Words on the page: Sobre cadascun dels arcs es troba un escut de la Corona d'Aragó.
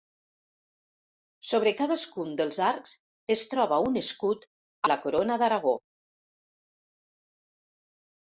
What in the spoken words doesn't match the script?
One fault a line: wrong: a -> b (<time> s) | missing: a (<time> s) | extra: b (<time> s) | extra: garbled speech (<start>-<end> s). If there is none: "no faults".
no faults